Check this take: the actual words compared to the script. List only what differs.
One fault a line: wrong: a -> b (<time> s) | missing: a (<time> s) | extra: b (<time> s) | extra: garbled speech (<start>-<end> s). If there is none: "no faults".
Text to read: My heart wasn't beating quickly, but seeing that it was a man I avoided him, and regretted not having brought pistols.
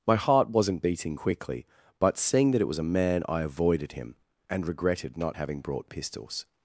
no faults